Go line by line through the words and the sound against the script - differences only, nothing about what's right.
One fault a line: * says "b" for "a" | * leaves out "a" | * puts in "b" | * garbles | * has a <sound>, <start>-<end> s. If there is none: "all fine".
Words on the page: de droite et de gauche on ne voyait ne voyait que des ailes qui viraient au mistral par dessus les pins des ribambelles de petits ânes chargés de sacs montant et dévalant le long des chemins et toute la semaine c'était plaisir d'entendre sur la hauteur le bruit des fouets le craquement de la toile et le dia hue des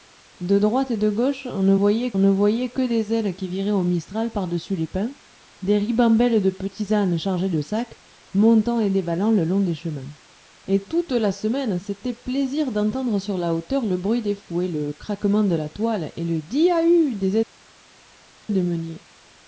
all fine